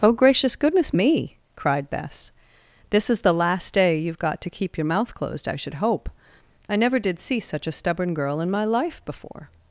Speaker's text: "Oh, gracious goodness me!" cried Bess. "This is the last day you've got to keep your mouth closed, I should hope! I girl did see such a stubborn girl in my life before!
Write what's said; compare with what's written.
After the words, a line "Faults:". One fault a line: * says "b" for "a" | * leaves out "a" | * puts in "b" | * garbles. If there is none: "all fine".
"Oh, gracious goodness me!" cried Bess. "This is the last day you've got to keep your mouth closed, I should hope! I never did see such a stubborn girl in my life before!
Faults:
* says "never" for "girl"